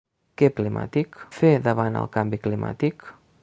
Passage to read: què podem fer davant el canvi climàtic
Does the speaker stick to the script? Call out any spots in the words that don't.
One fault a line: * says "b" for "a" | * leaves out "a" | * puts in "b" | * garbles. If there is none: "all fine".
* says "climàtic" for "podem"